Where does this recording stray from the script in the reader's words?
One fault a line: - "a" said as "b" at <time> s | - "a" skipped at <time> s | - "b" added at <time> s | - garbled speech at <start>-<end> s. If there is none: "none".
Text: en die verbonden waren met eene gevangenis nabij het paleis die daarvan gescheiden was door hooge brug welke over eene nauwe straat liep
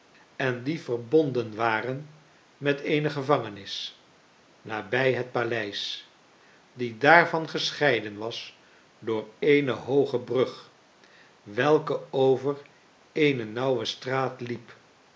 - "eene" added at 9.4 s